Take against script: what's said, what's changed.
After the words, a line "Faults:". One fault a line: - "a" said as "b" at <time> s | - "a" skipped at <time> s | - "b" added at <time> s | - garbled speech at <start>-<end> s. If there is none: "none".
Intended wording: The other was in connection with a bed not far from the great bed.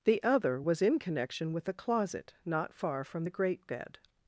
The other was in connection with a closet not far from the great bed.
Faults:
- "bed" said as "closet" at 1.7 s